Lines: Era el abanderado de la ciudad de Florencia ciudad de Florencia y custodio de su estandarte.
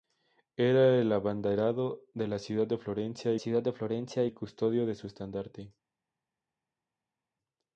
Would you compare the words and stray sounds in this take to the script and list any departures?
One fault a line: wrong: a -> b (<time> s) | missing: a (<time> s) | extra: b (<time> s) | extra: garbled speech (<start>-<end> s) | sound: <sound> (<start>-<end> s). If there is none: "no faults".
no faults